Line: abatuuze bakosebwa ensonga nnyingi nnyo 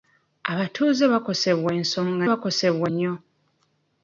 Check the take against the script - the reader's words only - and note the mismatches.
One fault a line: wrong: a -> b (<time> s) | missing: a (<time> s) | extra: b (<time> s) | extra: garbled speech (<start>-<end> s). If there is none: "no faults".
wrong: nnyingi -> bakosebwa (2.3 s)